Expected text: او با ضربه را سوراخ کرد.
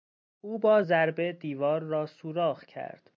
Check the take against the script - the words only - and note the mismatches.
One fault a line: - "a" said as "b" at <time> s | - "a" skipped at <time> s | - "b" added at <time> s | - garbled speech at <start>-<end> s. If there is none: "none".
- "دیوار" added at 1.3 s